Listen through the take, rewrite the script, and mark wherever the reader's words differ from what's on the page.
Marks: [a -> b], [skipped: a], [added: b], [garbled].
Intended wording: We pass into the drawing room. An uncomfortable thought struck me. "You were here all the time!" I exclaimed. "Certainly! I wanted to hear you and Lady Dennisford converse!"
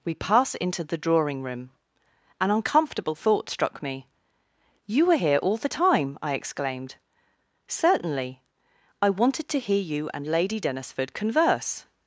We pass into the drawing room. An uncomfortable thought struck me. "You were here all the time!" I exclaimed. "Certainly! I wanted to hear you and Lady Dennisford converse!"